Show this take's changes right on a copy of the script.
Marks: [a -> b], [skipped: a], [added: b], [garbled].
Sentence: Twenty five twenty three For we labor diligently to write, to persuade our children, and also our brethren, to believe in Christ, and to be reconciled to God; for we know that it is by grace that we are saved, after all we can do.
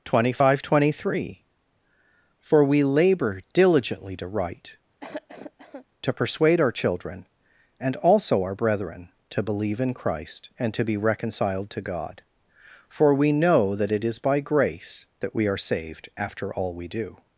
Twenty five twenty three For we labor diligently to write, to persuade our children, and also our brethren, to believe in Christ, and to be reconciled to God; for we know that it is by grace that we are saved, after all we [skipped: can] do.